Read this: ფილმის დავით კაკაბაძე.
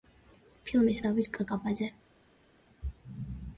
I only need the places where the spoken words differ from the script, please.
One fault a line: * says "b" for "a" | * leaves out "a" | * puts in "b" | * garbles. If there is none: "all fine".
all fine